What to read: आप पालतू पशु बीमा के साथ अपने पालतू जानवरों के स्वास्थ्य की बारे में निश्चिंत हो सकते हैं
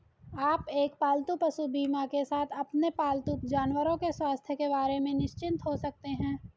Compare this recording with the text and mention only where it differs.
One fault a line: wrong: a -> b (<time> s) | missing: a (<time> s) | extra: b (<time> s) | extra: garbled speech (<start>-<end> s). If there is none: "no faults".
extra: एक (0.7 s)
wrong: की -> के (4.5 s)